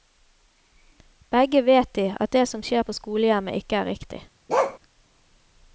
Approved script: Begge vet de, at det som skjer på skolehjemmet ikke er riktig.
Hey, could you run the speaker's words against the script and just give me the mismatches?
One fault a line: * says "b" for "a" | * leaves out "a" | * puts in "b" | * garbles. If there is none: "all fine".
all fine